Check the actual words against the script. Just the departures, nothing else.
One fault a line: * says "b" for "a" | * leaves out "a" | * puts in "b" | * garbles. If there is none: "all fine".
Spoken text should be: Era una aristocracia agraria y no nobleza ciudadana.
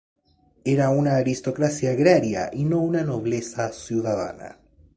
* puts in "una"